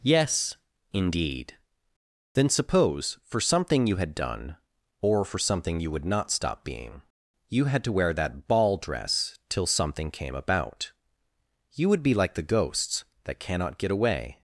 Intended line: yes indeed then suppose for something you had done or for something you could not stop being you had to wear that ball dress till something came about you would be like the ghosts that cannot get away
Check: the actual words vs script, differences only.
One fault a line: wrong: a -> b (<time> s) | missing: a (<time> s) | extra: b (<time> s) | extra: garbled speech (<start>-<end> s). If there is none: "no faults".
wrong: could -> would (5.9 s)